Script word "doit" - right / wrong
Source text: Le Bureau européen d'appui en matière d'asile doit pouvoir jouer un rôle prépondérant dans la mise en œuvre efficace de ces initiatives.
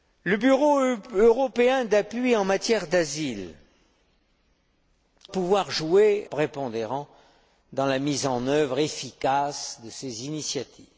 wrong